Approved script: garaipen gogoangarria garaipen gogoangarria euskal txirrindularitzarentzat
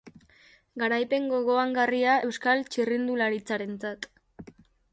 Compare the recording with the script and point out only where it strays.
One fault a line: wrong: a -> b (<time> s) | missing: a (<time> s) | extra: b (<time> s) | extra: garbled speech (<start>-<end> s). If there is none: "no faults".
missing: garaipen gogoangarria (2.1 s)